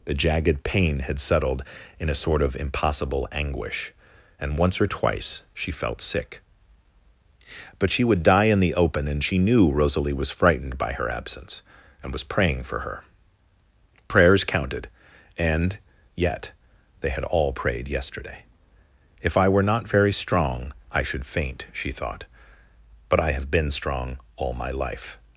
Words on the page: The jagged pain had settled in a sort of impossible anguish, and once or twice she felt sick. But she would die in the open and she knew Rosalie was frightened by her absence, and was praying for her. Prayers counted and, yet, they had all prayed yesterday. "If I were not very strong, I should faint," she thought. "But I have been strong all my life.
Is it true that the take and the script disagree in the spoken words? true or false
false